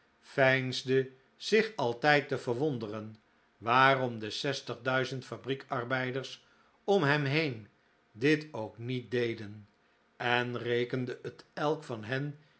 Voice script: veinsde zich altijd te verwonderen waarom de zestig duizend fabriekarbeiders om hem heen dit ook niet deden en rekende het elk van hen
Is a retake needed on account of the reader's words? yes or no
no